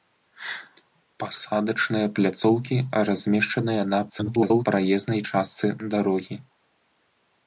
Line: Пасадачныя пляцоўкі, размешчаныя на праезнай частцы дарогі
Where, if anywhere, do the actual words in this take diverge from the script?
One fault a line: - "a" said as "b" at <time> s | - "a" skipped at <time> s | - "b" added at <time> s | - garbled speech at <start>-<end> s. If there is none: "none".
- garbled speech at 4.1-4.7 s